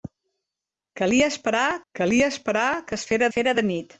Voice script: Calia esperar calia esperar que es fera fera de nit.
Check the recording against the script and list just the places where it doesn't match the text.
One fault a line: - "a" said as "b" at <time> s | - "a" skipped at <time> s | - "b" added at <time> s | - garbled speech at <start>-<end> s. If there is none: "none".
none